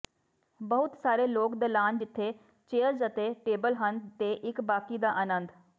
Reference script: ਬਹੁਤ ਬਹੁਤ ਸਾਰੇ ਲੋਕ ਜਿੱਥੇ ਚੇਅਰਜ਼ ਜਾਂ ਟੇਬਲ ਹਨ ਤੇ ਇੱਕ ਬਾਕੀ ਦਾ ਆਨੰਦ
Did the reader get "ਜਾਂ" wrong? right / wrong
wrong